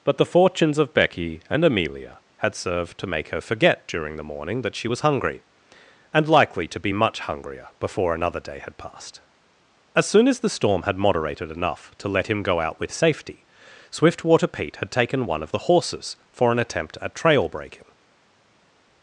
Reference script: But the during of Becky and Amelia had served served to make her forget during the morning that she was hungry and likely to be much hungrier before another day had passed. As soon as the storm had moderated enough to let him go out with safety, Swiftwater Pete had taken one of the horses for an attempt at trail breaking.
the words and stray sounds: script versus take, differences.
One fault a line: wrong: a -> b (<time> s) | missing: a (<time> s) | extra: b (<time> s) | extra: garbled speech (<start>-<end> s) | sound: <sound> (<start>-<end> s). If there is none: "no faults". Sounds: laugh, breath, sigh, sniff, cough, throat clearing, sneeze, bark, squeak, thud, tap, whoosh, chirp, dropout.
wrong: during -> fortunes (0.2 s)
missing: served (3.0 s)